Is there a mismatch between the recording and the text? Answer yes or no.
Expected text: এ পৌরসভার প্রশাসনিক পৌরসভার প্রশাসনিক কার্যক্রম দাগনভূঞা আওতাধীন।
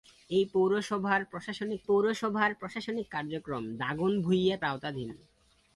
no